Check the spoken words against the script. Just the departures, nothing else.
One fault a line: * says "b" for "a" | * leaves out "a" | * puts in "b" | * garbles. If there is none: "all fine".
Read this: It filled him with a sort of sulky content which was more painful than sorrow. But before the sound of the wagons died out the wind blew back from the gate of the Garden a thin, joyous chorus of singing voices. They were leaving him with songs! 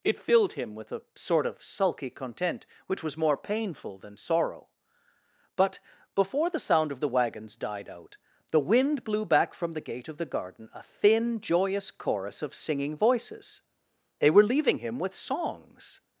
all fine